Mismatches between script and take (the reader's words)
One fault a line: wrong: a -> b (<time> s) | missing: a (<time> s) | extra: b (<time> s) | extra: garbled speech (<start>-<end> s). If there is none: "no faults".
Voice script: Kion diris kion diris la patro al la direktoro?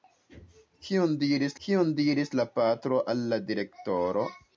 no faults